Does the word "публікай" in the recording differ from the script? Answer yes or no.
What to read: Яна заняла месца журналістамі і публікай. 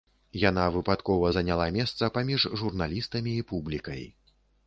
no